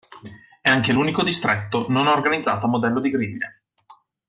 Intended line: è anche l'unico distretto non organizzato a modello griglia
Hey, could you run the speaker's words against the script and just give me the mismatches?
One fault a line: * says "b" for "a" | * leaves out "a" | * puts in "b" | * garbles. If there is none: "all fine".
* puts in "di"